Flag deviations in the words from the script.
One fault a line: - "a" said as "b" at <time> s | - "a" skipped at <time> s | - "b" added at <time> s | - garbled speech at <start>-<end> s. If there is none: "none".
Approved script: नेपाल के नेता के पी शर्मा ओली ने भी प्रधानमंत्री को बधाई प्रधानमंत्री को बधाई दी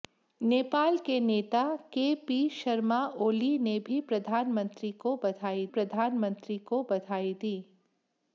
none